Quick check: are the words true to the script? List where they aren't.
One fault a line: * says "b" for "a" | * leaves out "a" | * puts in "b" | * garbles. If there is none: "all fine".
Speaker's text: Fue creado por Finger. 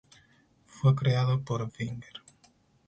all fine